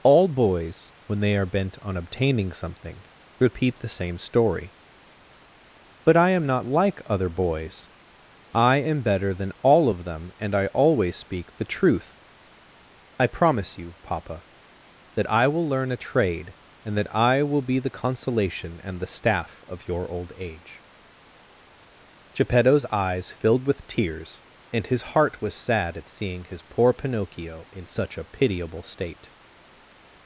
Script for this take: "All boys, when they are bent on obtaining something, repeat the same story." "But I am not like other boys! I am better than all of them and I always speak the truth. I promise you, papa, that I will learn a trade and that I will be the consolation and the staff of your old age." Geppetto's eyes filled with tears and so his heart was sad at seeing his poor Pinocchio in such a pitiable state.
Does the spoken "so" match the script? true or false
false